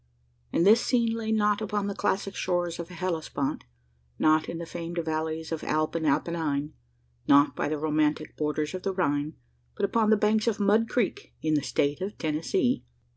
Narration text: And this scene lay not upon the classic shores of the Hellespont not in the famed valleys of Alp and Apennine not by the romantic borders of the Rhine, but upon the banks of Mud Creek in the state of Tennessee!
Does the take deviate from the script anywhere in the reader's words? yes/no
no